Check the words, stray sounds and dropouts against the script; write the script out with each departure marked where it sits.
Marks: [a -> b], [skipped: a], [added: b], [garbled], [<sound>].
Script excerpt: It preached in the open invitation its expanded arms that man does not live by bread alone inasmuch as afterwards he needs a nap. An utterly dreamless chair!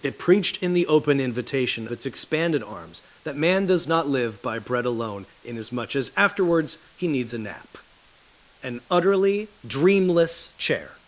It preached in the open invitation its expanded arms that man does not live by bread alone inasmuch as afterwards he needs a nap. An utterly dreamless chair!